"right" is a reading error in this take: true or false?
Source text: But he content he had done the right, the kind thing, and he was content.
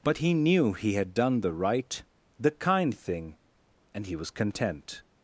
false